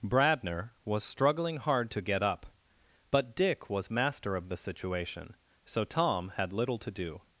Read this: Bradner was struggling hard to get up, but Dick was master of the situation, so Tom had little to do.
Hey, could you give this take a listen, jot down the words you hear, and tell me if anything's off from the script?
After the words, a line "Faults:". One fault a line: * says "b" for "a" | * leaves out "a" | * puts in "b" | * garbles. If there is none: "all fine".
Bradner was struggling hard to get up, but Dick was master of the situation, so Tom had little to do.
Faults:
all fine